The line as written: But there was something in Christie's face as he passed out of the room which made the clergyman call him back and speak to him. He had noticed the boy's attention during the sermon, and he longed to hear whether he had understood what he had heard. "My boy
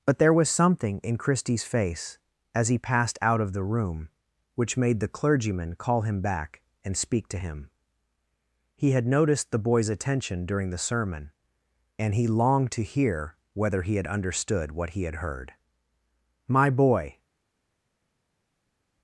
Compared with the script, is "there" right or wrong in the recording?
right